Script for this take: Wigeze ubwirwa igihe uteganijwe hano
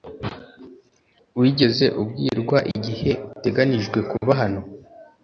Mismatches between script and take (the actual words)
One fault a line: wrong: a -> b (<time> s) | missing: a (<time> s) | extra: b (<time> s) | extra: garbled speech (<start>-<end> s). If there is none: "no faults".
extra: kuba (4.1 s)